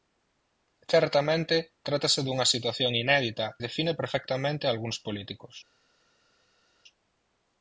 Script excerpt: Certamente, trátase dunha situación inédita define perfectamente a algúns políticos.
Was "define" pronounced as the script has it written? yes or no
yes